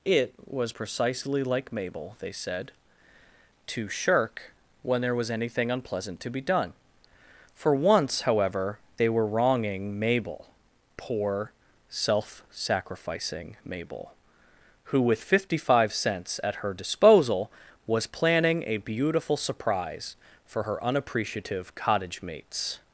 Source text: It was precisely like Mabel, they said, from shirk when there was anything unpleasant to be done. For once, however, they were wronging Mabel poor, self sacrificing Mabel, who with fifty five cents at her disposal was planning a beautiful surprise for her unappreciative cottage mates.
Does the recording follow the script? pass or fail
fail